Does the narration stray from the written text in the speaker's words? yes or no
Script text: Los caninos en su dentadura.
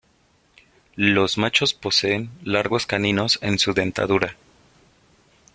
yes